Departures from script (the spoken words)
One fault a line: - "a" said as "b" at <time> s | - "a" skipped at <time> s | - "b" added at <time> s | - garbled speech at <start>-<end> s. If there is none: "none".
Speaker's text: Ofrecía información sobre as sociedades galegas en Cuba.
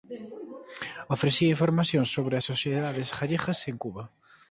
none